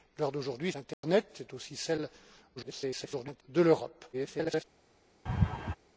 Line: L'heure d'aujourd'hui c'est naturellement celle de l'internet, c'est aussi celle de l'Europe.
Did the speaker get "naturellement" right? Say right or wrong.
wrong